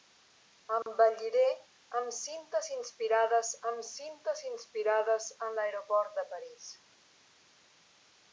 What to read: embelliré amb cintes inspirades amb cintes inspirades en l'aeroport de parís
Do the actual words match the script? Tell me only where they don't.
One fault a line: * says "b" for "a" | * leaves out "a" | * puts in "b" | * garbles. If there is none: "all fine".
all fine